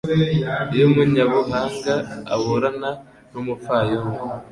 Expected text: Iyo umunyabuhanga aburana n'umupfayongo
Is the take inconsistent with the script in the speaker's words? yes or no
no